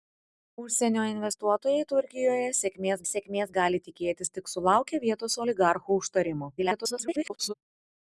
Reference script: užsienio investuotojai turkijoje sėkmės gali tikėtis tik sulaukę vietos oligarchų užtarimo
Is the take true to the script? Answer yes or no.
no